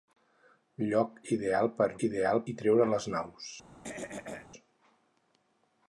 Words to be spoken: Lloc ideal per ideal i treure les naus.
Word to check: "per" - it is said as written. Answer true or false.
true